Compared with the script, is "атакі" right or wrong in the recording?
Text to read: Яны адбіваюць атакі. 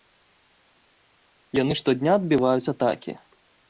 right